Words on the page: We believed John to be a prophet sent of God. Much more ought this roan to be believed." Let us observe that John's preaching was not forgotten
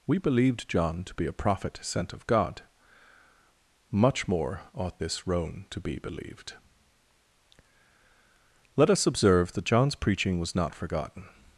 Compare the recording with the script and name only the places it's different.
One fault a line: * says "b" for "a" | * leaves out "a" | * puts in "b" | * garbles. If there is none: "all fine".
all fine